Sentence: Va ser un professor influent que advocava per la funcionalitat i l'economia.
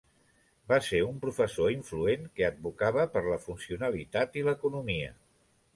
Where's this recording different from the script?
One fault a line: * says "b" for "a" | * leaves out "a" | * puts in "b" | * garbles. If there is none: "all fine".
all fine